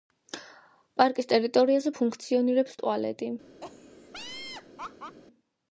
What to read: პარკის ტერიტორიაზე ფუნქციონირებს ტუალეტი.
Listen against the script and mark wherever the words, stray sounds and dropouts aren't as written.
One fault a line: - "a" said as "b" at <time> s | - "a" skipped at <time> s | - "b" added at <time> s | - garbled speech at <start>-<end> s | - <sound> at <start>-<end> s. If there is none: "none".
- laugh at 3.6-5.2 s